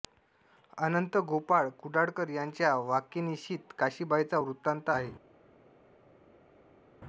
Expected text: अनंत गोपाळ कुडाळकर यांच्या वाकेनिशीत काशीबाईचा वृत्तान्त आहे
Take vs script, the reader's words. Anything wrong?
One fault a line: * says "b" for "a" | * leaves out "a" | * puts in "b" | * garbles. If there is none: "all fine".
all fine